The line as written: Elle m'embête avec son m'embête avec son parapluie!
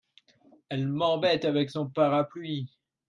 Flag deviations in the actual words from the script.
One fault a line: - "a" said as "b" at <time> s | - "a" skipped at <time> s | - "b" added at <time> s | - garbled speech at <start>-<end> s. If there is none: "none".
- "m'embête avec son" skipped at 1.9 s